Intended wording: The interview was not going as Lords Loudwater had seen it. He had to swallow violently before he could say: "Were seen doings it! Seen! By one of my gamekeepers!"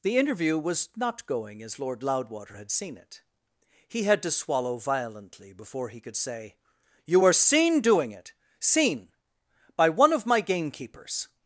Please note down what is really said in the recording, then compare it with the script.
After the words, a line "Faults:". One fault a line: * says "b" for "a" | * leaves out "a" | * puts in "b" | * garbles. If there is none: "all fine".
The interview was not going as Lord Loudwater had seen it. He had to swallow violently before he could say: "You were seen doing it! Seen! By one of my gamekeepers!"
Faults:
* says "Lord" for "Lords"
* puts in "You"
* says "doing" for "doings"